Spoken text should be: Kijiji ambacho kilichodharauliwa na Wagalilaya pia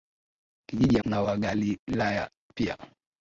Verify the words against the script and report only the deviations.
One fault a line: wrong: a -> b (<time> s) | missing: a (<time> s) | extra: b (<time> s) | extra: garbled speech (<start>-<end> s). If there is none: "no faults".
missing: ambacho kilichodharauliwa (1.0 s)